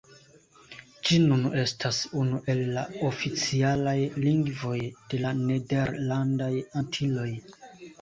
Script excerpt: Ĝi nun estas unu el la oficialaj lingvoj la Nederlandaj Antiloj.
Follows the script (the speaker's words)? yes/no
no